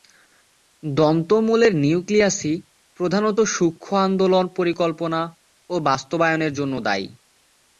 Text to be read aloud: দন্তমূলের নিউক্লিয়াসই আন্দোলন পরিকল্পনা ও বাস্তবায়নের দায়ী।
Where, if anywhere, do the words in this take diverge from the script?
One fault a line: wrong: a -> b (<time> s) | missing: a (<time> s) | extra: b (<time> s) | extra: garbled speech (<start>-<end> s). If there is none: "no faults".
extra: প্রধানত সূক্ষ্ম (3.0 s)
extra: জন্য (6.5 s)